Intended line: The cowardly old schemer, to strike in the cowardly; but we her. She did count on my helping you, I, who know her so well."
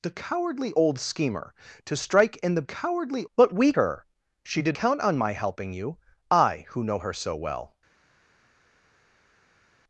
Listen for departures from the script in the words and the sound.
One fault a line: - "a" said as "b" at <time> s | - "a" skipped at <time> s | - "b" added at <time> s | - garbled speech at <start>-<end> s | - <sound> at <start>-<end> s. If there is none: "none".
none